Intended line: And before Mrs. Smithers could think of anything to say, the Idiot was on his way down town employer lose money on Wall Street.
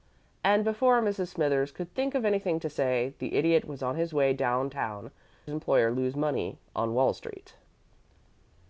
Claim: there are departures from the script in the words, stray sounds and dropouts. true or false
false